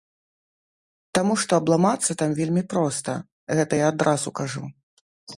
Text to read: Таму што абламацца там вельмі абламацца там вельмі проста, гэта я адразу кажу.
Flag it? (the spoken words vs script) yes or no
yes